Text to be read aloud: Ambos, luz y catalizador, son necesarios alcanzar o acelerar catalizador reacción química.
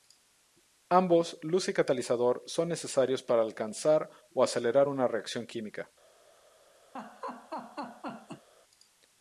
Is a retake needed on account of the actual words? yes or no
yes